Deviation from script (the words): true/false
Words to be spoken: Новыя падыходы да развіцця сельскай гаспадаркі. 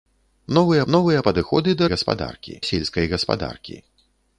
true